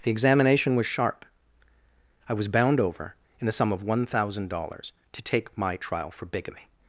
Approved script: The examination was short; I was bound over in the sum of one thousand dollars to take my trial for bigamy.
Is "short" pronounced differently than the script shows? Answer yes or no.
yes